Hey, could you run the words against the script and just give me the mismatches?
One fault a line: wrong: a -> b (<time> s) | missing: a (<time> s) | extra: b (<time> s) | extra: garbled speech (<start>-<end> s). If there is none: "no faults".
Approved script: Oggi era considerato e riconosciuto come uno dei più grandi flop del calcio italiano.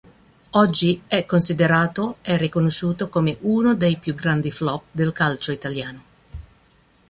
wrong: era -> è (1.1 s)